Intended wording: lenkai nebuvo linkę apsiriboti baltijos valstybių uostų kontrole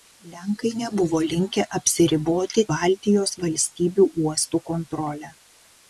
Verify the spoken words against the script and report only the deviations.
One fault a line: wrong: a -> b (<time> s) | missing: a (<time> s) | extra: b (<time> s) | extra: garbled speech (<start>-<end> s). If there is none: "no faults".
no faults